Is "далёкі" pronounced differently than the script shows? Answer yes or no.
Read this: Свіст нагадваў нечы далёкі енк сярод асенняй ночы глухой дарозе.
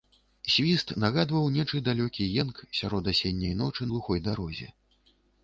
no